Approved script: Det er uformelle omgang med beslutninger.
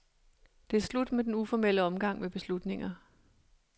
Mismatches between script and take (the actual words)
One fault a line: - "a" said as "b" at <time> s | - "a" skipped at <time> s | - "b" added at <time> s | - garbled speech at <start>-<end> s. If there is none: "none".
- "slut med den" added at 0.8 s